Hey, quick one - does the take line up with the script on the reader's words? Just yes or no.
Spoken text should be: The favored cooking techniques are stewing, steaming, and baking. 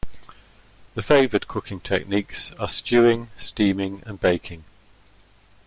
yes